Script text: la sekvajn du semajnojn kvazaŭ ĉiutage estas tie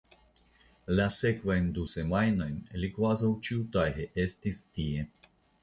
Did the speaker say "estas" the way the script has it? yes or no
no